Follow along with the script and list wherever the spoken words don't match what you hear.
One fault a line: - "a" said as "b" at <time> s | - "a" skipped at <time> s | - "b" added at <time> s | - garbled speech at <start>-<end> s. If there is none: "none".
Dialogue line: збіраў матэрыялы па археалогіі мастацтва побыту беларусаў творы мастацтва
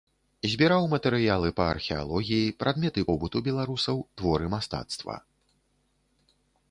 - "мастацтва" said as "прадметы" at 2.6 s